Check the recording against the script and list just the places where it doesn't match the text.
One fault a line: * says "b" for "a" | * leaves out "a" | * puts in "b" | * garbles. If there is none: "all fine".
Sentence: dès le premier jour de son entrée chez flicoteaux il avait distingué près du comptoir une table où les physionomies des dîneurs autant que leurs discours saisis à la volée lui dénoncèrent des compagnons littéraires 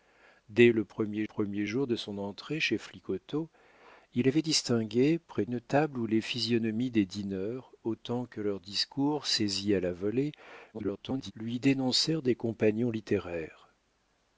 * puts in "premier"
* leaves out "du comptoir"
* garbles